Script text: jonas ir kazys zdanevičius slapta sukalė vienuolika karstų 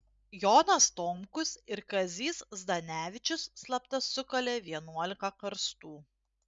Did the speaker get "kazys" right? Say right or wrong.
right